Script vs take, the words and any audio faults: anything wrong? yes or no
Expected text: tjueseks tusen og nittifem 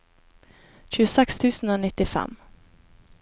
no